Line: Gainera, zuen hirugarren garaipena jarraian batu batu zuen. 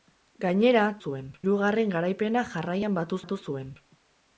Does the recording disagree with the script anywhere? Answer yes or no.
no